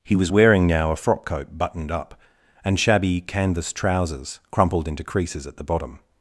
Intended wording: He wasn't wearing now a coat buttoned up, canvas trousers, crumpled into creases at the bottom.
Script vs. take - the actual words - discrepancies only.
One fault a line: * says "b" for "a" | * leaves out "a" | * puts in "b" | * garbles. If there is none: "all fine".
* says "was" for "wasn't"
* puts in "frock"
* puts in "and shabby"